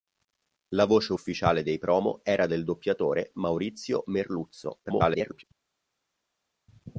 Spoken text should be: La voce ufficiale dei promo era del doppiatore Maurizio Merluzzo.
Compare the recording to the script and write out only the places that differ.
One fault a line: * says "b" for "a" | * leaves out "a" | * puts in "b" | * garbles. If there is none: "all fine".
* garbles